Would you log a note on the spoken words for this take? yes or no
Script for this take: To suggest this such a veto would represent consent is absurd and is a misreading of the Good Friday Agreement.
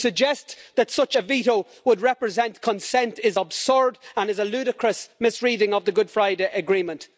yes